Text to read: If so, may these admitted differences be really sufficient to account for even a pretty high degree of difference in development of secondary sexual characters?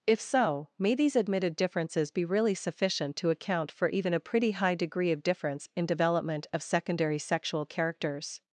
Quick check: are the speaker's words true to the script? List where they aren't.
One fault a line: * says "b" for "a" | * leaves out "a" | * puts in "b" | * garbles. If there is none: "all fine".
all fine